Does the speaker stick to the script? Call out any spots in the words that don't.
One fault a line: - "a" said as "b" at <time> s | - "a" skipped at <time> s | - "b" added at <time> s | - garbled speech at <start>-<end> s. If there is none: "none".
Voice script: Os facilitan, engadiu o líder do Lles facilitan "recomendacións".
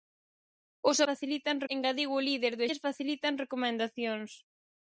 none